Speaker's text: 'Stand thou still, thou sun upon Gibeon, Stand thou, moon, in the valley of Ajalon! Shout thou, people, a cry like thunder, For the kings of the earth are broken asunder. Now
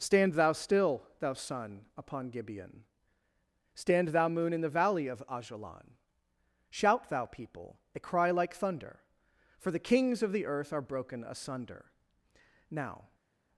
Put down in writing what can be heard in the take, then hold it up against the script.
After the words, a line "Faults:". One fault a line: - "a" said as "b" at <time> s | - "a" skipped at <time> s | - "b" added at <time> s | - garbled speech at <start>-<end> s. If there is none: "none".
'Stand thou still, thou sun upon Gibeon, Stand thou, moon, in the valley of Ajalon! Shout thou, people, a cry like thunder, For the kings of the earth are broken asunder. Now
Faults:
none